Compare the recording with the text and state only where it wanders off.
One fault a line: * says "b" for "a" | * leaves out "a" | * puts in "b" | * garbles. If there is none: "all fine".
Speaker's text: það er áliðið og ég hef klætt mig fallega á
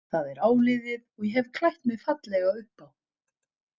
* puts in "upp"